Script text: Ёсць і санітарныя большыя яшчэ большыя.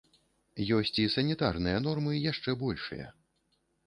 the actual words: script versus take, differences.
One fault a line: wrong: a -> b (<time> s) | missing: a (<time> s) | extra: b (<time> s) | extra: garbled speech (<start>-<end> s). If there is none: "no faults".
wrong: большыя -> нормы (1.9 s)